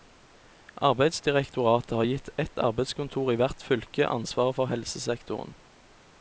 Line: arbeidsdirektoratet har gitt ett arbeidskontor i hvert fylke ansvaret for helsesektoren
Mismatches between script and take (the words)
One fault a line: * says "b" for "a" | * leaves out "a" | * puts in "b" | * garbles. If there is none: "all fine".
all fine